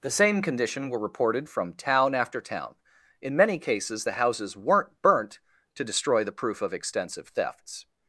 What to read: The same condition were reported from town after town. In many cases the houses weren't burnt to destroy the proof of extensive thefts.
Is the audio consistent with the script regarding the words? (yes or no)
yes